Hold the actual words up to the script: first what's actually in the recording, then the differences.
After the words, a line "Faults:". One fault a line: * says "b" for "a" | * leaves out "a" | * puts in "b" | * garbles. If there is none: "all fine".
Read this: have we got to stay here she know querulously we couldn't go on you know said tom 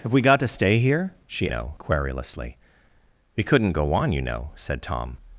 have we got to stay here she know querulously we couldn't go on you know said tom
Faults:
all fine